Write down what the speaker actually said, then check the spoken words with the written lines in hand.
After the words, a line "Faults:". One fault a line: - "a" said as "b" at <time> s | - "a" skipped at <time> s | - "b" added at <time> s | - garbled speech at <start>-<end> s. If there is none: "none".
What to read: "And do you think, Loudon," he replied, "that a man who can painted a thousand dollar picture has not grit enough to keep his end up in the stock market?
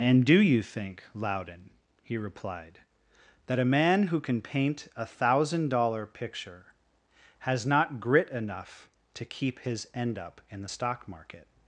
"And do you think, Loudon," he replied, "that a man who can paint a thousand dollar picture has not grit enough to keep his end up in the stock market?
Faults:
- "painted" said as "paint" at 4.4 s